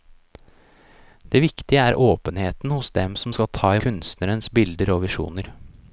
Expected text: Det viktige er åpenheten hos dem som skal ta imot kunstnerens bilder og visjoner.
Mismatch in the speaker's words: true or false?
true